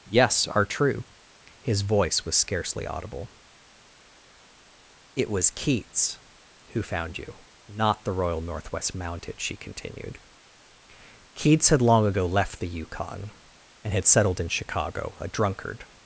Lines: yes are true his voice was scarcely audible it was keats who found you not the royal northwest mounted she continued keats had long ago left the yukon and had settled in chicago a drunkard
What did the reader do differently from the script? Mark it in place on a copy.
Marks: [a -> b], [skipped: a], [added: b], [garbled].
yes are true his voice was scarcely audible it was keats who found you not the royal northwest mounted she continued keats had long ago left the yukon and had settled in chicago a drunkard